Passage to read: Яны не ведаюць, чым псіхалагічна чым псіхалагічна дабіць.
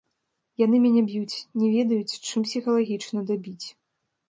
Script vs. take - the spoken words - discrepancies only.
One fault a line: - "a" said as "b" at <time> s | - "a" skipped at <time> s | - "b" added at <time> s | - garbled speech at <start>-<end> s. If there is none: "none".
- "мяне б'юць" added at 0.8 s
- "чым псіхалагічна" skipped at 3.3 s